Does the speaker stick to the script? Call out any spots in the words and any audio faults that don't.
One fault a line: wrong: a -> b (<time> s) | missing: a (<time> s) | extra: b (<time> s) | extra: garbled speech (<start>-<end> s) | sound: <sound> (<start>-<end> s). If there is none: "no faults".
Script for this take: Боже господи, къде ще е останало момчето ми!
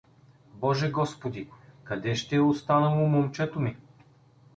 no faults